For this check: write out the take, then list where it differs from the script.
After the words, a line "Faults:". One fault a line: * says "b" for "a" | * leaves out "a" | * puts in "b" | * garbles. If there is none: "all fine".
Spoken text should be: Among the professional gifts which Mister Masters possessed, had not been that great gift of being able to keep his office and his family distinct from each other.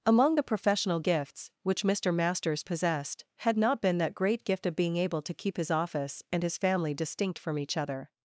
Among the professional gifts which Mister Masters possessed, had not been that great gift of being able to keep his office and his family distinct from each other.
Faults:
all fine